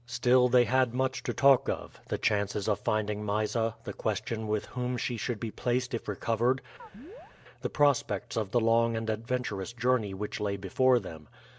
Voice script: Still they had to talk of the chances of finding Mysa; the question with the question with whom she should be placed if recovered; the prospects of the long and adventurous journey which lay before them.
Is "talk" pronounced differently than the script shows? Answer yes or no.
no